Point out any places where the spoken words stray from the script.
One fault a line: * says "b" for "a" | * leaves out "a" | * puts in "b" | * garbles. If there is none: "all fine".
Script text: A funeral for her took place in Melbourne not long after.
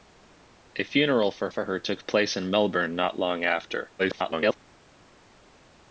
* puts in "for"
* garbles